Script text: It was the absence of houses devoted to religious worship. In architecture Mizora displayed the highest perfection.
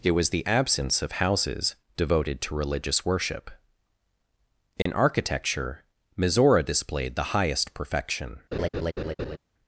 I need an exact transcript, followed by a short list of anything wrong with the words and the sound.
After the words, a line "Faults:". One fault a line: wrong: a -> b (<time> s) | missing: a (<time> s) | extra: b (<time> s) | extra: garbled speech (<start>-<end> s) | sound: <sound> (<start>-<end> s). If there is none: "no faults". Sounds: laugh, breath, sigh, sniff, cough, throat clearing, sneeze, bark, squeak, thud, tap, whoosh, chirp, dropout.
It was the absence of houses devoted to religious worship. In architecture Mizora displayed the highest perfection.
Faults:
sound: dropout (4.8-4.9 s)
sound: laugh (8.5-9.4 s)